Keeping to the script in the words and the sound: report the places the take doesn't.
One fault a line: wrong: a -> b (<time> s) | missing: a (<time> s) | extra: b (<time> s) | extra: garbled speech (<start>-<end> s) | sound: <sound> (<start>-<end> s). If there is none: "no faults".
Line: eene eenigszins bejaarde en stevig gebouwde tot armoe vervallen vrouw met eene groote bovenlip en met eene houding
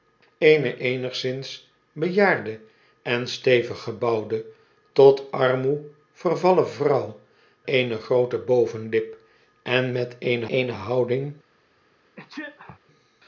missing: met (7.2 s)
extra: eene (10.5 s)
sound: sneeze (12.2-12.8 s)